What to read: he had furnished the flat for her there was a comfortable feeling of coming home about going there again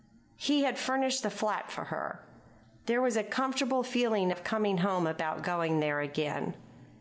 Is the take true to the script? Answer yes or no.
yes